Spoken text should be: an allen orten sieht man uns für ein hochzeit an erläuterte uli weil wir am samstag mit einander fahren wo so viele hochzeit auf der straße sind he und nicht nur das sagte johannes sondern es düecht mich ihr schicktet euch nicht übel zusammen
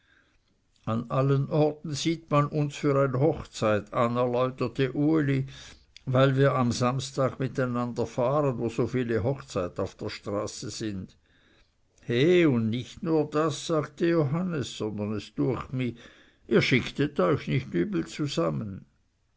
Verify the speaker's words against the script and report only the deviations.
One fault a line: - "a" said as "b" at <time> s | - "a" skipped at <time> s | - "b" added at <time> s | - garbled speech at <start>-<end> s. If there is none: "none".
none